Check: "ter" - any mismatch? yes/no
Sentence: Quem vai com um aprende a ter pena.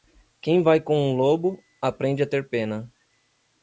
no